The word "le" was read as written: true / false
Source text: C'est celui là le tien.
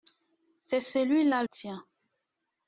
false